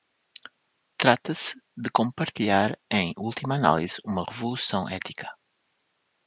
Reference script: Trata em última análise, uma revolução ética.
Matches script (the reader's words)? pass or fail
fail